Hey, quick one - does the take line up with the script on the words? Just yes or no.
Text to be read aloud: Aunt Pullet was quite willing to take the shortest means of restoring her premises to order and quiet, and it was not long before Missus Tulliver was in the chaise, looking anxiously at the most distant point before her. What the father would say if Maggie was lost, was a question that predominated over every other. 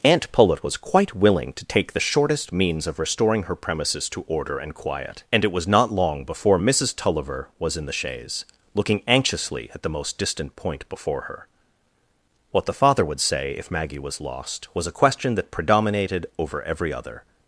yes